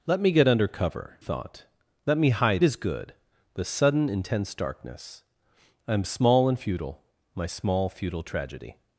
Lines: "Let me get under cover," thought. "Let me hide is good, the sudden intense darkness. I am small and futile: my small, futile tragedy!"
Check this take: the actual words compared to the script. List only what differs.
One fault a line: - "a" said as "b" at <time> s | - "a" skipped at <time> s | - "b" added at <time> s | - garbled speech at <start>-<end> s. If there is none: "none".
none